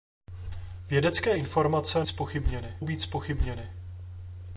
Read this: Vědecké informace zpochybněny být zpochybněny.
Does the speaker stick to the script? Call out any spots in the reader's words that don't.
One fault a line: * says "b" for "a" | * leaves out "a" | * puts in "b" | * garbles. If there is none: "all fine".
all fine